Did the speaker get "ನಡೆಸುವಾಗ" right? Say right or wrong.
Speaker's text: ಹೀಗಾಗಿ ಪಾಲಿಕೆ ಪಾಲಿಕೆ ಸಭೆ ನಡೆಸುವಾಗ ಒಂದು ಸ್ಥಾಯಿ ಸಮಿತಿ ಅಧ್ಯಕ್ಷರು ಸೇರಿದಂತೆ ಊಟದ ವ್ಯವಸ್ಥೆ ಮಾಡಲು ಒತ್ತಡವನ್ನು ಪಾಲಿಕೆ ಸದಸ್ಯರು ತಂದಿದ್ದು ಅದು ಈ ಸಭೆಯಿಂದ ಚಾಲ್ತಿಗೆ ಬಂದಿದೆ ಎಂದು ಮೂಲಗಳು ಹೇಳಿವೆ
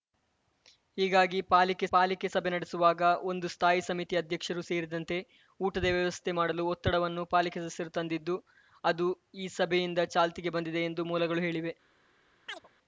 right